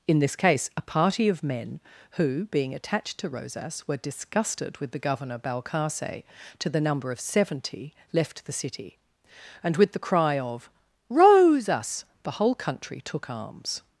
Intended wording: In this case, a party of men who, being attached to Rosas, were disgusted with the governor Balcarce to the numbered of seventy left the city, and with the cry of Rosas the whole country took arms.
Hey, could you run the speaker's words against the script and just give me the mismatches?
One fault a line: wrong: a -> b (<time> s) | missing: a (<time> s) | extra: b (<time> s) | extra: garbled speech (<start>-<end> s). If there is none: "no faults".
wrong: numbered -> number (6.8 s)